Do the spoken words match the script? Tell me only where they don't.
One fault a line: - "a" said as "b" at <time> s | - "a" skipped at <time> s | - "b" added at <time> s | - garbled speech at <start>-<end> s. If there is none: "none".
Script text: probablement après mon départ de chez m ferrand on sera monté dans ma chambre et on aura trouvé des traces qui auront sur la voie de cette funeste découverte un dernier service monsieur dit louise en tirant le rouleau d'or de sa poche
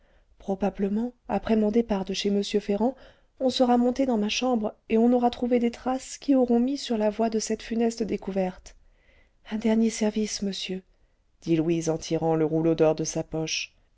- "mis" added at 6.6 s